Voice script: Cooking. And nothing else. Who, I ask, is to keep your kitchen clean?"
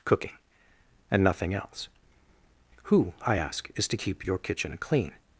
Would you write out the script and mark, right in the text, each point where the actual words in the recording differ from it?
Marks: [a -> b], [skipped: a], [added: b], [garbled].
Cooking. And nothing else. Who, I ask, is to keep your kitchen clean?"